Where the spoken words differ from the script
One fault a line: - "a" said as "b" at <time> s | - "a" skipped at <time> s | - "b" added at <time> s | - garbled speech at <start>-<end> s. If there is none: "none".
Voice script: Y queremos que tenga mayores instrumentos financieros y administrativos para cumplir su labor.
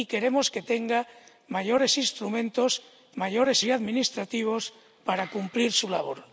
- "financieros" said as "mayores" at 3.2 s